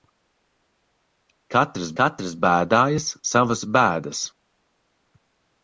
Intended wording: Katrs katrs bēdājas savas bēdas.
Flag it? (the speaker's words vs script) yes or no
no